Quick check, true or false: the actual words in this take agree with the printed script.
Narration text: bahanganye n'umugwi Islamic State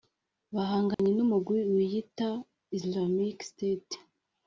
false